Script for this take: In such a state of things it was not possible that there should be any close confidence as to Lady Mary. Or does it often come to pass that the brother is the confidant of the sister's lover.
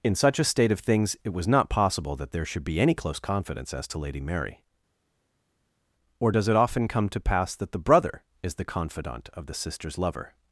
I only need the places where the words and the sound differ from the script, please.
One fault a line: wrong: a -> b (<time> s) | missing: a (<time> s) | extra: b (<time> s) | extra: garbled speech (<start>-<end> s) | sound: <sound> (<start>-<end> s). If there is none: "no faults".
no faults